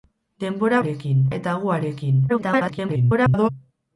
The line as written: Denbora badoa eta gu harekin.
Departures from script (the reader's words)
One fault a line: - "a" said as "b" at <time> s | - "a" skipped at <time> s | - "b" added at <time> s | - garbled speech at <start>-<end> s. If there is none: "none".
- "badoa" said as "harekin" at 0.8 s
- garbled speech at 2.3-3.5 s